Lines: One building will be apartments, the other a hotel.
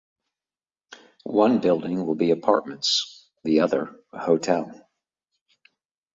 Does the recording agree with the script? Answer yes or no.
yes